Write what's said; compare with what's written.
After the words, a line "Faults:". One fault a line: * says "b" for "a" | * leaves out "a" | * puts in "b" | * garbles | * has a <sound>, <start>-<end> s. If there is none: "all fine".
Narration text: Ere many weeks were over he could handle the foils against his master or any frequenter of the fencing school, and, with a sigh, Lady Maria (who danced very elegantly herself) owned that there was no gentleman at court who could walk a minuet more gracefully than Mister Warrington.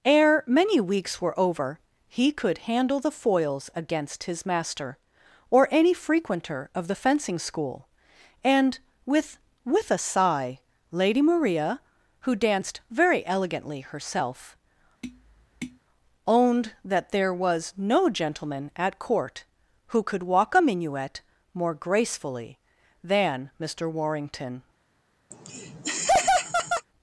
Ere many weeks were over he could handle the foils against his master or any frequenter of the fencing school, and, with with a sigh, Lady Maria (who danced very elegantly herself) owned that there was no gentleman at court who could walk a minuet more gracefully than Mister Warrington.
Faults:
* puts in "with"
* has a tap, 15.0-15.8 s
* has a laugh, 25.3-26.9 s